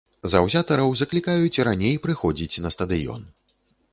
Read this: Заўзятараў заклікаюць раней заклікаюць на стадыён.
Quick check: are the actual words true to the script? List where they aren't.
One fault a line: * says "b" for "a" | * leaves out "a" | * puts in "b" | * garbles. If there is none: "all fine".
* says "прыходзіць" for "заклікаюць"